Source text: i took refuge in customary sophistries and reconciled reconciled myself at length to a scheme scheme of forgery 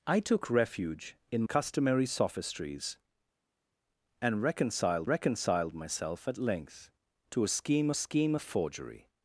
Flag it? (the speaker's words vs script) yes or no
no